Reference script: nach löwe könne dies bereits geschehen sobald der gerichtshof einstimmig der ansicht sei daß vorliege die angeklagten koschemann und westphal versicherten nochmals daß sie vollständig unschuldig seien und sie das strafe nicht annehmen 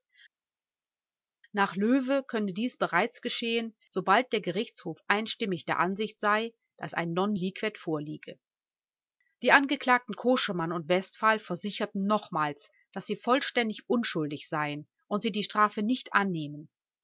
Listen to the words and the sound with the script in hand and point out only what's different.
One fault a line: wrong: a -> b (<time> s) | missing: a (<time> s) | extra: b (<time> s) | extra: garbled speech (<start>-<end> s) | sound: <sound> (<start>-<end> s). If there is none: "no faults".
extra: ein non liquet (6.9 s)
wrong: das -> die (15.3 s)